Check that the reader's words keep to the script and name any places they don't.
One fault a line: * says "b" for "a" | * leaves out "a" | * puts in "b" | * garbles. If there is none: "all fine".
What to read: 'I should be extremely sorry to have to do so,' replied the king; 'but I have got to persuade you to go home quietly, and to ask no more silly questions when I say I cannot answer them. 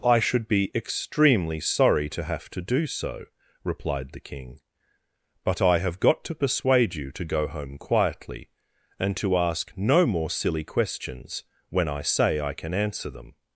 * says "can" for "cannot"